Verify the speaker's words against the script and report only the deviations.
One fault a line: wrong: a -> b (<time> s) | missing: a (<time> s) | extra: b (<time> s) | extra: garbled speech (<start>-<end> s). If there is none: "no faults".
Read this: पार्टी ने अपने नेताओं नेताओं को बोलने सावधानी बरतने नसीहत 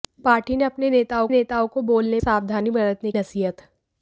no faults